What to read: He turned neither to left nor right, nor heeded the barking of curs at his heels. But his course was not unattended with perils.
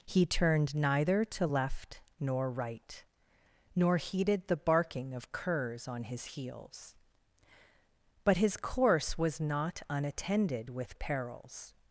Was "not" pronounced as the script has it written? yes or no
yes